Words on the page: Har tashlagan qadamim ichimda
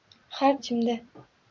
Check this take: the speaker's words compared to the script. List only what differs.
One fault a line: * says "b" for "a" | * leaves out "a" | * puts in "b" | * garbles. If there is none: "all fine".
* leaves out "tashlagan qadamim"